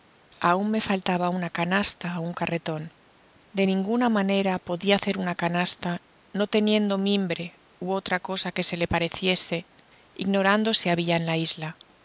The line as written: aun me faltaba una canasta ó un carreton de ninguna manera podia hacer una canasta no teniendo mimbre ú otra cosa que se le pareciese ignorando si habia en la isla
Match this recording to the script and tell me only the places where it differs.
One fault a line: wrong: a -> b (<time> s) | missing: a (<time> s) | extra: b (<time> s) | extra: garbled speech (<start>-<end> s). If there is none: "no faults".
no faults